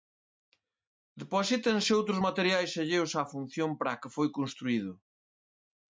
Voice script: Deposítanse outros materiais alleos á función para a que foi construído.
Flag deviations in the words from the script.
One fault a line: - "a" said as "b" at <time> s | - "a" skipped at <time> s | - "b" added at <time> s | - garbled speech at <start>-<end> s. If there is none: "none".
none